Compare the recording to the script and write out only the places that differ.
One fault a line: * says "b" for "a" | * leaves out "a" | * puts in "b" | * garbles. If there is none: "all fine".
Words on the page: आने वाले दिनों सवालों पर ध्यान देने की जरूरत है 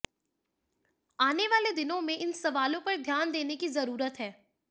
* puts in "में इन"